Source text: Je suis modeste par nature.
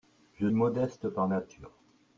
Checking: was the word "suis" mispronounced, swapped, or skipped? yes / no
yes